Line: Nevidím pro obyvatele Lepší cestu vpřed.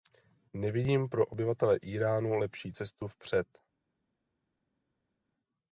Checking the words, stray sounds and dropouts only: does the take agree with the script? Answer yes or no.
no